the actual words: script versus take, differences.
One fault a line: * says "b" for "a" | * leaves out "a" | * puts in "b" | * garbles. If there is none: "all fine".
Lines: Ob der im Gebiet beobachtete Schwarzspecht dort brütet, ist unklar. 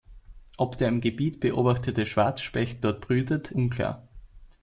* leaves out "ist"